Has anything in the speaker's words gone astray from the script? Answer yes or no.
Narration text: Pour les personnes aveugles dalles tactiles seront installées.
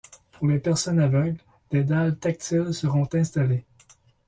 yes